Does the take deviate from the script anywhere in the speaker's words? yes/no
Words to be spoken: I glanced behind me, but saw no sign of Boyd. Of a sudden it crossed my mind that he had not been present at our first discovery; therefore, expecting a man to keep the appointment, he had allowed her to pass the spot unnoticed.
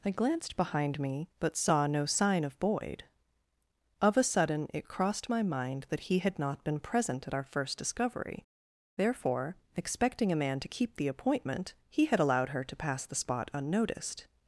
no